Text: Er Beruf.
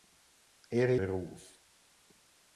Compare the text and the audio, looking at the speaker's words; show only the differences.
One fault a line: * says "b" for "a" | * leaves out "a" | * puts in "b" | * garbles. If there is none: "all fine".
all fine